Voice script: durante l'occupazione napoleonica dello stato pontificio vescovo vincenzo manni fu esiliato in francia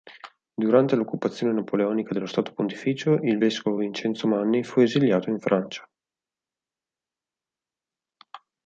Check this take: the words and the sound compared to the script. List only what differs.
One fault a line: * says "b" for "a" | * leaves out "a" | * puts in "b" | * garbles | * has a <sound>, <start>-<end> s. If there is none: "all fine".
* puts in "il"